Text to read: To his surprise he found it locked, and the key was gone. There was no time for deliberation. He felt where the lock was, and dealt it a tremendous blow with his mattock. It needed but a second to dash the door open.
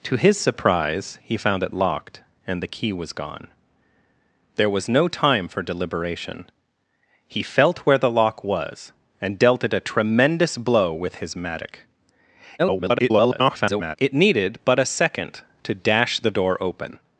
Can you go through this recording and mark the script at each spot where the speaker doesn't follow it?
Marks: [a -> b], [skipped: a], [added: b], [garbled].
To his surprise he found it locked, and the key was gone. There was no time for deliberation. He felt where the lock was, and dealt it a tremendous blow with his mattock. [garbled] It needed but a second to dash the door open.